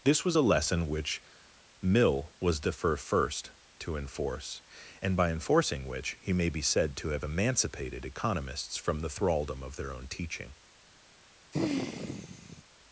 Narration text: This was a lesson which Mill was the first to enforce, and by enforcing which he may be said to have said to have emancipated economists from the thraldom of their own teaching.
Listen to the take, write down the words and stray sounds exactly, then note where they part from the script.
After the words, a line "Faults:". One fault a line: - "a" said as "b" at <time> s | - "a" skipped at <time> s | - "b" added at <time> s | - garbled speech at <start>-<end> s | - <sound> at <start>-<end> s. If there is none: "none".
This was a lesson which Mill was the first to enforce, and by enforcing which he may be said to have emancipated economists from the thraldom of their own teaching.
Faults:
- "said to have" skipped at 7.2 s
- sigh at 11.5-12.6 s